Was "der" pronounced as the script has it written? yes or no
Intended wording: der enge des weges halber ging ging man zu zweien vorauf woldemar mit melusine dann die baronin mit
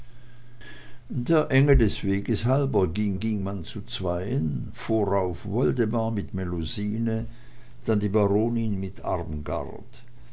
yes